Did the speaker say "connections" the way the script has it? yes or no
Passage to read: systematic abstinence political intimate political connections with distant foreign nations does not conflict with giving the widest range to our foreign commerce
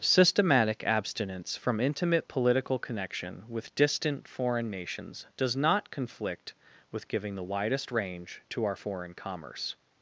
no